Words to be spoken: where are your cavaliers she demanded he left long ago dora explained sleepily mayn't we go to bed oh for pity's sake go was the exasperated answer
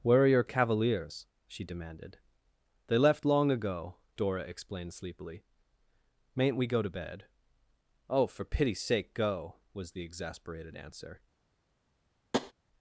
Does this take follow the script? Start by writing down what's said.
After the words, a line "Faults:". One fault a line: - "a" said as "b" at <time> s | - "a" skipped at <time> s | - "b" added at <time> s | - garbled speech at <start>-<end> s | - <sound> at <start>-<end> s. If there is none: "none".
where are your cavaliers she demanded they left long ago dora explained sleepily mayn't we go to bed oh for pity's sake go was the exasperated answer
Faults:
- "he" said as "they" at 2.9 s
- tap at 12.3-12.5 s